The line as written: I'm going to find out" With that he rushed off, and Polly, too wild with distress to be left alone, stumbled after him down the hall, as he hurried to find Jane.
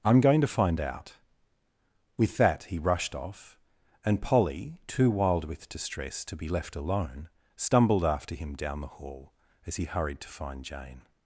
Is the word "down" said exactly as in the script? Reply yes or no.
yes